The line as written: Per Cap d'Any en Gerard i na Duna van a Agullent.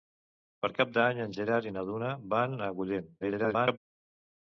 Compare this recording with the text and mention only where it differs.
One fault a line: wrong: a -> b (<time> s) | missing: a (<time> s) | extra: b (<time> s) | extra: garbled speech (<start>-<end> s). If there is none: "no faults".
extra: garbled speech (3.2-3.8 s)